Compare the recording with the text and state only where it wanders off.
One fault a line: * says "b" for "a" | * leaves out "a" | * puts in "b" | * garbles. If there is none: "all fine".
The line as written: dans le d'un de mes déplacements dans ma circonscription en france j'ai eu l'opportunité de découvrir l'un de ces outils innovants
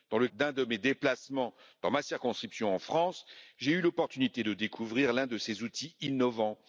all fine